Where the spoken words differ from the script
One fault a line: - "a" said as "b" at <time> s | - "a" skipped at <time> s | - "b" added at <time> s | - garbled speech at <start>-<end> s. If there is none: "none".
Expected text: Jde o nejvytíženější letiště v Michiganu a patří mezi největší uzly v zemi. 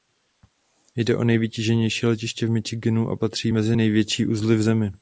none